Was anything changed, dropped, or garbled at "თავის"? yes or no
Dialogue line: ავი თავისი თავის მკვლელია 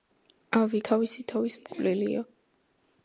no